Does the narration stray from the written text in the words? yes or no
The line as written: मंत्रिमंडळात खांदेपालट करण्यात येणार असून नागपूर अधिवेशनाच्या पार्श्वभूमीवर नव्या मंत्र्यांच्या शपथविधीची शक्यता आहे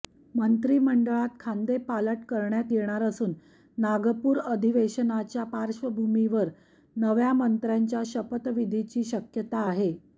no